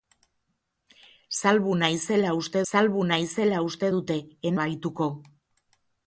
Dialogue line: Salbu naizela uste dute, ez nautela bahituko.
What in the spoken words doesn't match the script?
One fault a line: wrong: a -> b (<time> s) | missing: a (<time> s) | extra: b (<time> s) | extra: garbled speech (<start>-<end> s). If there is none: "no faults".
extra: salbu naizela uste (2.7 s)
missing: nautela (4.5 s)